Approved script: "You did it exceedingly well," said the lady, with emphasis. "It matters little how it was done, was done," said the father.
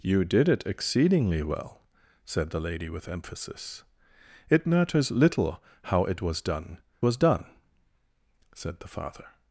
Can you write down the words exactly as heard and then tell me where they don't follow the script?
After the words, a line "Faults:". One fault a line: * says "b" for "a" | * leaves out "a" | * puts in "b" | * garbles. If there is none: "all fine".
"You did it exceedingly well," said the lady, with emphasis. "It matters little how it was done, was done," said the father.
Faults:
all fine